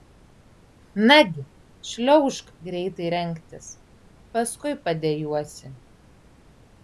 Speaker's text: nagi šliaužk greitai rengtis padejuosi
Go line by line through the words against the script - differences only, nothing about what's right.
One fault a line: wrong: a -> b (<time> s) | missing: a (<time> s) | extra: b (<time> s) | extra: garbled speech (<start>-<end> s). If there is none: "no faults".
extra: paskui (4.3 s)